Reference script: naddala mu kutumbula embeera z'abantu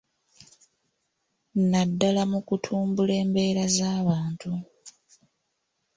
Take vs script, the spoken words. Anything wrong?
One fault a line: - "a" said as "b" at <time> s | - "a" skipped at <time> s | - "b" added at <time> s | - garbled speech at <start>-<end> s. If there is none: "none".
none